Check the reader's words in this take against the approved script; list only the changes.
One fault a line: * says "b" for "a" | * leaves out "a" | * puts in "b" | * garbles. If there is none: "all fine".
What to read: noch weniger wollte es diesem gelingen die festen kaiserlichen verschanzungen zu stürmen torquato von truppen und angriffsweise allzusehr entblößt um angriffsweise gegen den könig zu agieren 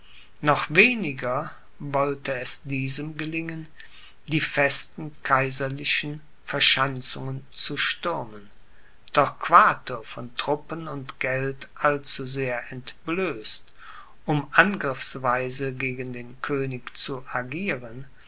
* says "geld" for "angriffsweise"